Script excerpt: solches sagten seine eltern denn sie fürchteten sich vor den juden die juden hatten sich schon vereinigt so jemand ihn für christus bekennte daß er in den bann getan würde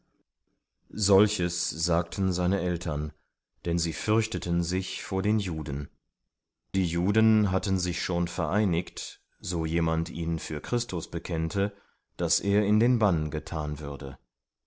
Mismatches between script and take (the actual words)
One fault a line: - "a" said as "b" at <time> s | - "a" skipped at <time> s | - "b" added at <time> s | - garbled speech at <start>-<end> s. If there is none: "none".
none